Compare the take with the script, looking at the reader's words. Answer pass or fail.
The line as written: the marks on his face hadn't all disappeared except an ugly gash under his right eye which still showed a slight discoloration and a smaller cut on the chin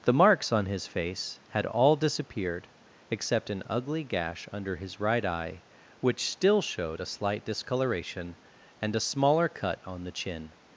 fail